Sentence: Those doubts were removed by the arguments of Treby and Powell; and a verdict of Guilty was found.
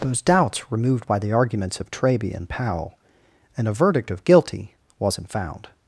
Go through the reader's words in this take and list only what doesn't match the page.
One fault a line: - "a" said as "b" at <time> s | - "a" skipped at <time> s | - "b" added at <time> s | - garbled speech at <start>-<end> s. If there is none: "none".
- "were" skipped at 0.7 s
- "was" said as "wasn't" at 5.0 s